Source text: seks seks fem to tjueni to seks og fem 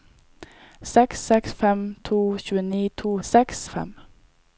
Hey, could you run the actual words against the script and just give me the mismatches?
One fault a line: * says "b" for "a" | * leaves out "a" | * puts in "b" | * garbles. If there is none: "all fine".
all fine